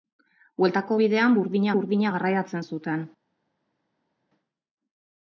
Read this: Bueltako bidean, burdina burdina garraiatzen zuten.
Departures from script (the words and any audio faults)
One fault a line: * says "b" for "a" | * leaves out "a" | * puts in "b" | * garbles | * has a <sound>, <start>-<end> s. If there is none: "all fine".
all fine